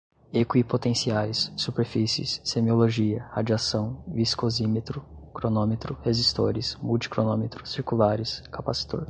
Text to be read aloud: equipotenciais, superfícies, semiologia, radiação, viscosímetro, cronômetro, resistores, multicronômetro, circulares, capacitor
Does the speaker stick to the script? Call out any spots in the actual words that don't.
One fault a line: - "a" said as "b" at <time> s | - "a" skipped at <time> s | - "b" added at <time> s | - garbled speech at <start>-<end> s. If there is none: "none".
none